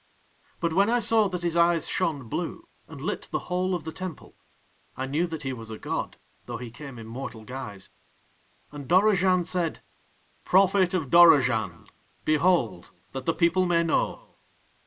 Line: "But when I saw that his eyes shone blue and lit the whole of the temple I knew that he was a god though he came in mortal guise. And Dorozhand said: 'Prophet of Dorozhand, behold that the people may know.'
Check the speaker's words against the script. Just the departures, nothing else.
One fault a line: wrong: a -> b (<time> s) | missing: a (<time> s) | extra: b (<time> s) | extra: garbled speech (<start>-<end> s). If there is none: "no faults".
no faults